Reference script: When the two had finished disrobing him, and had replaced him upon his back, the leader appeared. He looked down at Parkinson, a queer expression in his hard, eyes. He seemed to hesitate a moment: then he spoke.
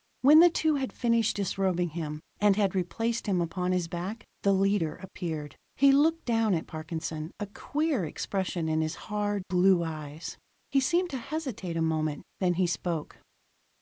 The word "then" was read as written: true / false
true